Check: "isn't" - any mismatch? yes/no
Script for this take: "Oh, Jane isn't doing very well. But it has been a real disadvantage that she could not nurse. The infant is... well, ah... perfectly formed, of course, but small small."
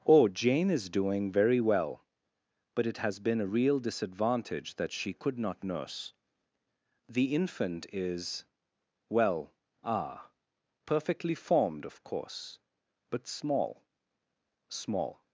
yes